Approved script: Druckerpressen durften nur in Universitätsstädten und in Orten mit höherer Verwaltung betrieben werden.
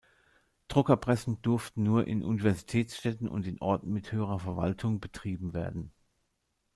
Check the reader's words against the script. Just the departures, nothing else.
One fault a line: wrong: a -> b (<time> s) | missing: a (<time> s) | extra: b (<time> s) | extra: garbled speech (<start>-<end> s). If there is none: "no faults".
no faults